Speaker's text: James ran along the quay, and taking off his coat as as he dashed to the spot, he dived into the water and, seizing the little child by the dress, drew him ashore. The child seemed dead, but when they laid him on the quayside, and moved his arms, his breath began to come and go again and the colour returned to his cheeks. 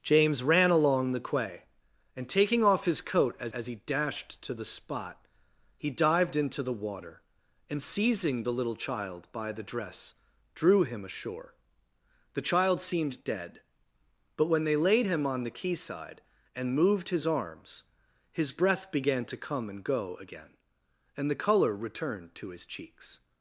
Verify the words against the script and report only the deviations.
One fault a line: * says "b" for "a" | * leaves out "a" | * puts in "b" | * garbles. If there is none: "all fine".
all fine